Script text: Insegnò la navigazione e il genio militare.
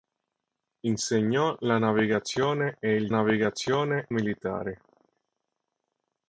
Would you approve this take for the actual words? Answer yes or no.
no